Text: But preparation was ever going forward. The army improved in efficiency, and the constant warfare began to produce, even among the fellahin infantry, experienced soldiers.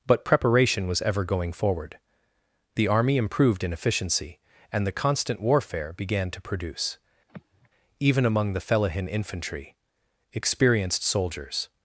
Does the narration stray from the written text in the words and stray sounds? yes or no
yes